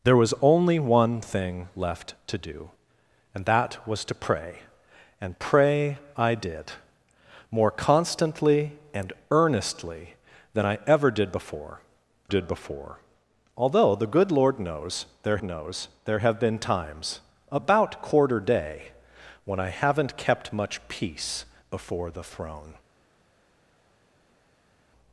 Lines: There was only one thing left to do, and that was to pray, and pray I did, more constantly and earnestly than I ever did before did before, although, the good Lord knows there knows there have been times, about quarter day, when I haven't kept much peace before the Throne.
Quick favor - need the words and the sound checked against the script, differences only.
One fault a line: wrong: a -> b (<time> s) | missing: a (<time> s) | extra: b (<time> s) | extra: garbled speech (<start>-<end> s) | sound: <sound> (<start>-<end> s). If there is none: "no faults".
no faults